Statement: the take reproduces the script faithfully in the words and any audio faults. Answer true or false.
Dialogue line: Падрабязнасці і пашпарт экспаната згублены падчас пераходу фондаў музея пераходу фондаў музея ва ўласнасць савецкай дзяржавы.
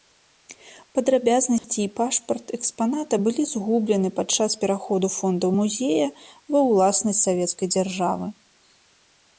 false